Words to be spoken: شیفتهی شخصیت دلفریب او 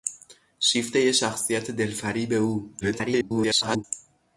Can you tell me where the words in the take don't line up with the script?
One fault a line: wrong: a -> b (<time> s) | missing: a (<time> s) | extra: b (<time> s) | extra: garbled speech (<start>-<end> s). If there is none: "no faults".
extra: garbled speech (2.8-3.8 s)